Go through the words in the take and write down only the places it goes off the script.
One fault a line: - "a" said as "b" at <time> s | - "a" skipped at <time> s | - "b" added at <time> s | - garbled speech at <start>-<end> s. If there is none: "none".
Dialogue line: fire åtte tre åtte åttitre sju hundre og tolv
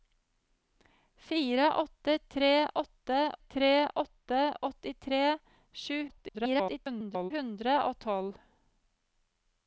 - "tre åtte" added at 3.4 s
- garbled speech at 6.1-7.3 s